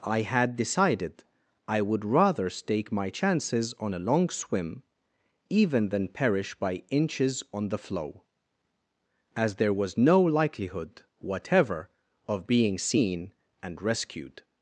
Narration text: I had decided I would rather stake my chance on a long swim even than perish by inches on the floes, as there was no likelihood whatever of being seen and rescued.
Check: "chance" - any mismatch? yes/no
yes